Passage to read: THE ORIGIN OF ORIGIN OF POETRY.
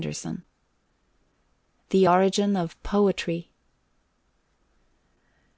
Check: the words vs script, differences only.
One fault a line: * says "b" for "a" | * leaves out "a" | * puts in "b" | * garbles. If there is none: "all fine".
* leaves out "ORIGIN OF"